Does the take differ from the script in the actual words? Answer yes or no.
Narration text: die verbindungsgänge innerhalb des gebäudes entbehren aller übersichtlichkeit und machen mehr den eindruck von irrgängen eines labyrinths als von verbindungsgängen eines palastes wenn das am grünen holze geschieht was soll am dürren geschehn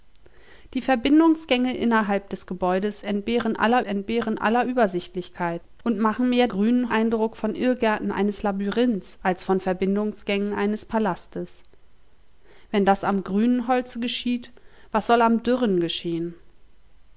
yes